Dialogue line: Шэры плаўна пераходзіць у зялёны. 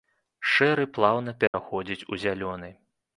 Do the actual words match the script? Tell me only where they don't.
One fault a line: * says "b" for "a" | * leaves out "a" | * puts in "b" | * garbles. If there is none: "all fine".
all fine